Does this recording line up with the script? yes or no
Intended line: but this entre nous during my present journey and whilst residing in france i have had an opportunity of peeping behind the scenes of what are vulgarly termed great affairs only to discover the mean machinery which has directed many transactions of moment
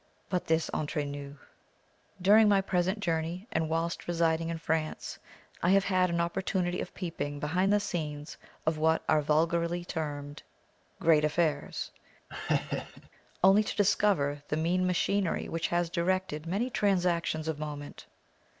yes